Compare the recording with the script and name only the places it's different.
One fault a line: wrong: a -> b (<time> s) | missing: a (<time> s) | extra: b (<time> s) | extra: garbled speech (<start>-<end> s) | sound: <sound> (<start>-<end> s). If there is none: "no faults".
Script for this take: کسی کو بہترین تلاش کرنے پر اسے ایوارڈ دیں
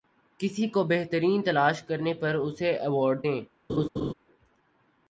sound: laugh (3.7-4.1 s)